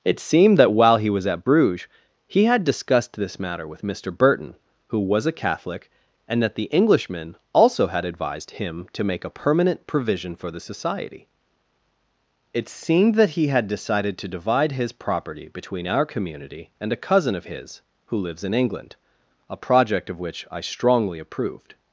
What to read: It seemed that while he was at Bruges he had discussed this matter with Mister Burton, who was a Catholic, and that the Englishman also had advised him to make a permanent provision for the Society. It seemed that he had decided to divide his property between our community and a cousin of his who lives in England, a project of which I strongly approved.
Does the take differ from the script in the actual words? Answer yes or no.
no